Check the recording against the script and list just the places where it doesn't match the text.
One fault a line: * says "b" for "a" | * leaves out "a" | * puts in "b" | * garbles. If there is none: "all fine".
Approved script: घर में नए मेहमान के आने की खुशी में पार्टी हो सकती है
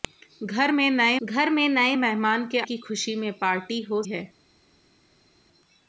* puts in "घर में नए"
* leaves out "आने"
* leaves out "सकती"